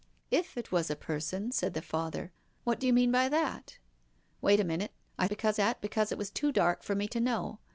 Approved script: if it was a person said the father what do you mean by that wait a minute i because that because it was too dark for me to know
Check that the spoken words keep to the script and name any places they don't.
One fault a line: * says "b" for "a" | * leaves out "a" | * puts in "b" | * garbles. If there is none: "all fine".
all fine